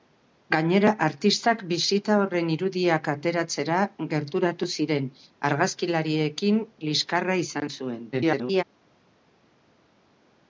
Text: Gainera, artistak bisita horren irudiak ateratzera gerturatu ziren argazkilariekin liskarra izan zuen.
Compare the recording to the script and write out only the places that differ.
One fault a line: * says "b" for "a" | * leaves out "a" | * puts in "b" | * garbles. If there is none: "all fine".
* garbles